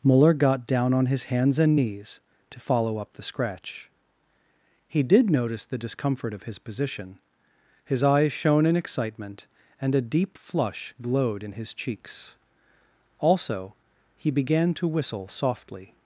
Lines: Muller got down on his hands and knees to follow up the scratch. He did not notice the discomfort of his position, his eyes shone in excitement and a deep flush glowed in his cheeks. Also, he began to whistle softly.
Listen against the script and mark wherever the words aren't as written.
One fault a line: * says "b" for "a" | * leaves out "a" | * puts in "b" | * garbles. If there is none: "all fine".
* leaves out "not"